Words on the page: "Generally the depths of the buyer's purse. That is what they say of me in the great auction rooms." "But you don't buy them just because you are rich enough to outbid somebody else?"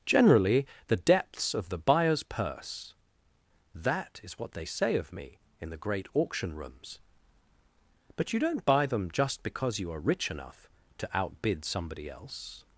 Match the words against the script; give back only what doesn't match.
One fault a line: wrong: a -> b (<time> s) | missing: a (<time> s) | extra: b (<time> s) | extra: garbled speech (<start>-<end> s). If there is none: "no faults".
no faults